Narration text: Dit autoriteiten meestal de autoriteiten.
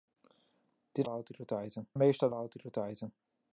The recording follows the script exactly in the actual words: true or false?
true